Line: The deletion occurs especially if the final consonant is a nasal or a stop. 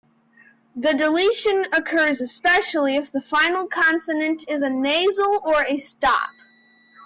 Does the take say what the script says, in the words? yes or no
yes